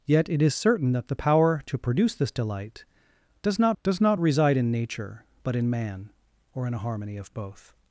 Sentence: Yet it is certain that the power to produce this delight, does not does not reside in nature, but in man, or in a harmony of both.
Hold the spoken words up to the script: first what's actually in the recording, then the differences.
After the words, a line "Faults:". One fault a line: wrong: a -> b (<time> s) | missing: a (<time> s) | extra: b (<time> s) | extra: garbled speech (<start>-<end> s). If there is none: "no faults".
Yet it is certain that the power to produce this delight, does not does not reside in nature, but in man, or in a harmony of both.
Faults:
no faults